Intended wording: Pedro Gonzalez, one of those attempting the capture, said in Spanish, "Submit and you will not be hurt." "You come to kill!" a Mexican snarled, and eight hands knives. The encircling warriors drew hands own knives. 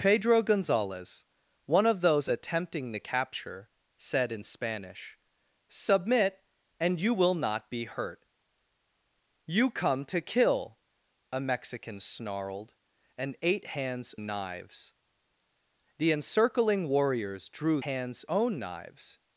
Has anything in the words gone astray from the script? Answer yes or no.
no